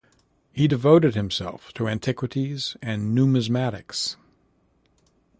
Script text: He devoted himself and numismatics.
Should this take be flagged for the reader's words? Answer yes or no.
yes